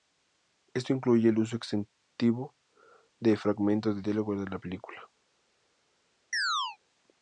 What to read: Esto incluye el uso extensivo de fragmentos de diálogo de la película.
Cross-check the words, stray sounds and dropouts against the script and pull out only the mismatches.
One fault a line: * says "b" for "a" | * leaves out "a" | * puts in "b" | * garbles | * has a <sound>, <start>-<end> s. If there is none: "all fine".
* has a chirp, 6.3-6.8 s